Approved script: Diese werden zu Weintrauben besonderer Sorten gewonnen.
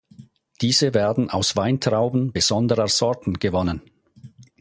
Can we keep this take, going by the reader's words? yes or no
no